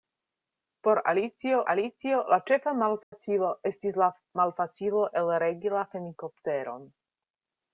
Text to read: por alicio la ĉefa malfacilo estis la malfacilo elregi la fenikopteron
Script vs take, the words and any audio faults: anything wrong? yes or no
yes